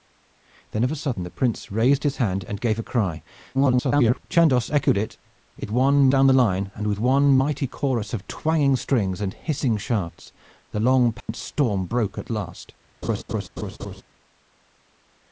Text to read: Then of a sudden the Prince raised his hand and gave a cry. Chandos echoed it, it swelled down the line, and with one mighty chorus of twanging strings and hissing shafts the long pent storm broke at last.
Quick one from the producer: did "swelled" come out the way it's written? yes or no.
no